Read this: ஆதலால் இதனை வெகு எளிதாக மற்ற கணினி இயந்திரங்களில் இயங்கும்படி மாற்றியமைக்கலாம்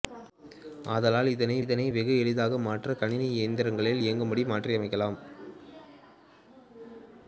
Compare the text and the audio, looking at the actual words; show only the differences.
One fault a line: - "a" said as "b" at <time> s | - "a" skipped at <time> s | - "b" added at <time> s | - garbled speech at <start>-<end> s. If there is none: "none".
- "இதனை" added at 1.6 s